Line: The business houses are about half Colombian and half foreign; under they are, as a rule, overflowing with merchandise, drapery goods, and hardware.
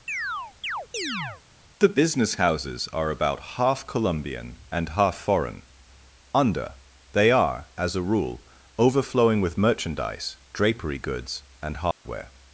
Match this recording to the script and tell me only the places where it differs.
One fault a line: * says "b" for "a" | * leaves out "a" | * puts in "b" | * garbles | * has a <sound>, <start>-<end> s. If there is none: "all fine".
* has a chirp, 0.1-1.4 s
* has a dropout, 11.9-12.1 s